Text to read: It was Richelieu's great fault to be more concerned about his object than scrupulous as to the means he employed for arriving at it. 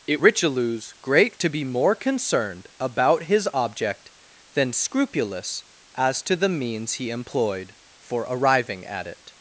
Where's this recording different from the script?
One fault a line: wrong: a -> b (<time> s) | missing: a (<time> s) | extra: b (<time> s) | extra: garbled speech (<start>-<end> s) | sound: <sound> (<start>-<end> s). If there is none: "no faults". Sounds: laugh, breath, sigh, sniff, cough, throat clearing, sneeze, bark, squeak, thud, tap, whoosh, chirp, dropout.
missing: was (0.2 s)
missing: fault (1.4 s)